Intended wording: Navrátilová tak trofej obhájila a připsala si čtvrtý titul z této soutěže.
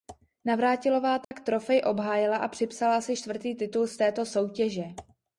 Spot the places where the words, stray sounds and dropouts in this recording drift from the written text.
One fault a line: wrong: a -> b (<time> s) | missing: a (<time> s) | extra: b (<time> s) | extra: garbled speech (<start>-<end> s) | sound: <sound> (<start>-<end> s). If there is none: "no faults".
sound: dropout (1.2-1.3 s)